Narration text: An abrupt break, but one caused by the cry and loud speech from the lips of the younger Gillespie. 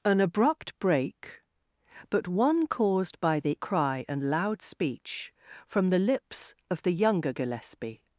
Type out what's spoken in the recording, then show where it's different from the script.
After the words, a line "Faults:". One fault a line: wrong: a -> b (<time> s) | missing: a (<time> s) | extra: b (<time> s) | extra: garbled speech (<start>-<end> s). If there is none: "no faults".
An abrupt break, but one caused by the cry and loud speech from the lips of the younger Gillespie.
Faults:
no faults